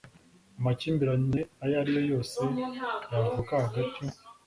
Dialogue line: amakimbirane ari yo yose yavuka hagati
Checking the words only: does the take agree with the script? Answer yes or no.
no